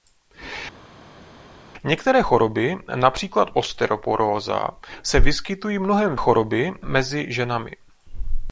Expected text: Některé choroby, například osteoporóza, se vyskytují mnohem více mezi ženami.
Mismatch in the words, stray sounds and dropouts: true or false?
true